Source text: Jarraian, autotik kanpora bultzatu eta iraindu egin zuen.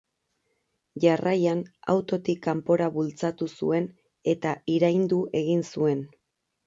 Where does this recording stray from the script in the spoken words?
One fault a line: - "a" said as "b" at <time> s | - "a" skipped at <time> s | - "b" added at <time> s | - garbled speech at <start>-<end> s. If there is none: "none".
- "zuen" added at 3.6 s